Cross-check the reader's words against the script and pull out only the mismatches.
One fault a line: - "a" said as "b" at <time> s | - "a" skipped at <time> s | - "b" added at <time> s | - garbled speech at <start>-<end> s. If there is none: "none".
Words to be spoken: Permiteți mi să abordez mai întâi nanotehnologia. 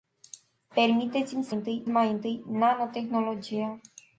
- "abordez" said as "întâi" at 1.5 s